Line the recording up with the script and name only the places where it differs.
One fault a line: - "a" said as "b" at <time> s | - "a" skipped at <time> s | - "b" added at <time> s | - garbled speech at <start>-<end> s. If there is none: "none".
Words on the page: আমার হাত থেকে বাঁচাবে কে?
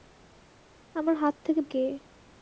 - "বাঁচাবে" skipped at 1.6 s